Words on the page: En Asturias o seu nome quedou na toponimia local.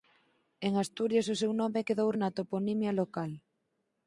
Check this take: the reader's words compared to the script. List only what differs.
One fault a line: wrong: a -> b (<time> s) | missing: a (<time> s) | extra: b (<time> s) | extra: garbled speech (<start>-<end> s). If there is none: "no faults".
no faults